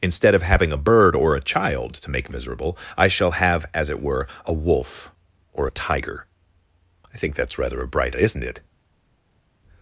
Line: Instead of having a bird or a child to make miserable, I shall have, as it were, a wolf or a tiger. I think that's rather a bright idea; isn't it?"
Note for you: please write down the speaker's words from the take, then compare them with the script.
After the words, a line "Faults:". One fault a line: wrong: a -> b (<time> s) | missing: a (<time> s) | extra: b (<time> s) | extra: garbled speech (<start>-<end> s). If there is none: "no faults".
Instead of having a bird or a child to make miserable, I shall have, as it were, a wolf or a tiger. I think that's rather a bright; isn't it?"
Faults:
missing: idea (8.1 s)